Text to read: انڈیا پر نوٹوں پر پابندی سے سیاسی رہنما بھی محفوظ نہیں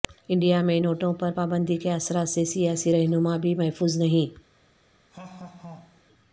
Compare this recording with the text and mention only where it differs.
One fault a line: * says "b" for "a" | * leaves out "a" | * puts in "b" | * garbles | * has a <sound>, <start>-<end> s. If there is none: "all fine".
* says "میں" for "پر"
* puts in "کے اثرات"
* has a laugh, 5.1-6.0 s